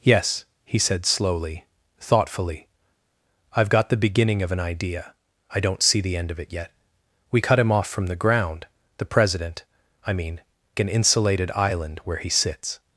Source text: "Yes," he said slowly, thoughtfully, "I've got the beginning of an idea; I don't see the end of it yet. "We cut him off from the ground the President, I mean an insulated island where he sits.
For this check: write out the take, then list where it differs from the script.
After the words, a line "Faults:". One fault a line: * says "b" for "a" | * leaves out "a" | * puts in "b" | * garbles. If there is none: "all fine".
"Yes," he said slowly, thoughtfully, "I've got the beginning of an idea; I don't see the end of it yet. "We cut him off from the ground the President, I mean an insulated island where he sits.
Faults:
all fine